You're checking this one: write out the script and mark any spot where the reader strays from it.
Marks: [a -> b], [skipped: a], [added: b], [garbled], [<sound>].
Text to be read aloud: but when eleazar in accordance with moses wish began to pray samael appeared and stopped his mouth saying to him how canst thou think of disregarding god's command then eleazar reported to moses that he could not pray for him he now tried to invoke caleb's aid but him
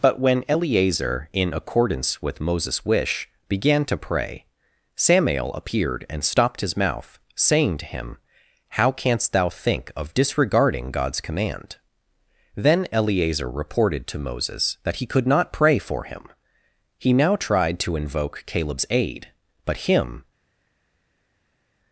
but when eleazar in accordance with moses wish began to pray samael appeared and stopped his mouth saying to him how canst thou think of disregarding god's command then eleazar reported to moses that he could not pray for him he now tried to invoke caleb's aid but him